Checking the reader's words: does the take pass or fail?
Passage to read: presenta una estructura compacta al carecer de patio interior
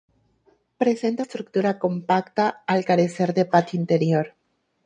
fail